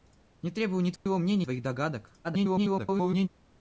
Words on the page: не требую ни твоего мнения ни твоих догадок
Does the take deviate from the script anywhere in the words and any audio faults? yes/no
yes